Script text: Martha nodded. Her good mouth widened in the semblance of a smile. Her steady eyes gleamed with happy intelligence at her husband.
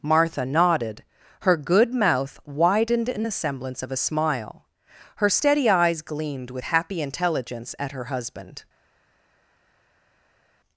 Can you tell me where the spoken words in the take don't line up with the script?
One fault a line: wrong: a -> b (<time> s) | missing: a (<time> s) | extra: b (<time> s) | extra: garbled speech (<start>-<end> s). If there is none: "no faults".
no faults